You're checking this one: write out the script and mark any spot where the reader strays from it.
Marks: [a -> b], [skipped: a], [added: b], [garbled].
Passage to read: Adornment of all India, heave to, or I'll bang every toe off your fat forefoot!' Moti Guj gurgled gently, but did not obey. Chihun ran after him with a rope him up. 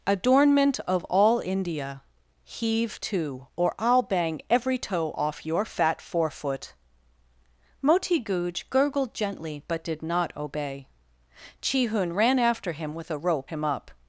Adornment of all India, heave to, or I'll bang every toe off your fat forefoot!' Moti Guj gurgled gently, but did not obey. Chihun ran after him with a rope him up.